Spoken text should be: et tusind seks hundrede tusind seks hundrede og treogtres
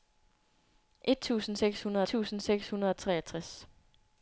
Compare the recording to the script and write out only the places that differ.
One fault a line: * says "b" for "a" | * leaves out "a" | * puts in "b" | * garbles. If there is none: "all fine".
all fine